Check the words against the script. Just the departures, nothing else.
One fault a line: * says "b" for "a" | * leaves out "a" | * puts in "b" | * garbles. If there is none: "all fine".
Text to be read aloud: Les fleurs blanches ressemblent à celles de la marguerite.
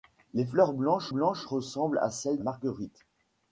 * puts in "blanches"
* leaves out "de la"